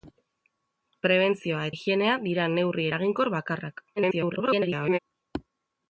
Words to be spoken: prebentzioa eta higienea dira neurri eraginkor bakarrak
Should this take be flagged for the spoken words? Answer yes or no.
yes